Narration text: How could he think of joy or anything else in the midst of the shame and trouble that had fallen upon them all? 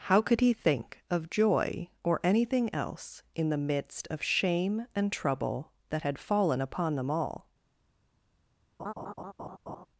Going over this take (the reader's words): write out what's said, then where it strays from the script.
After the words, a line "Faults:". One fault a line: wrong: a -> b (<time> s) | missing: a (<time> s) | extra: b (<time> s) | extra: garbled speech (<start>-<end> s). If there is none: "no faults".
How could he think of joy or anything else in the midst of shame and trouble that had fallen upon them all?
Faults:
missing: the (4.2 s)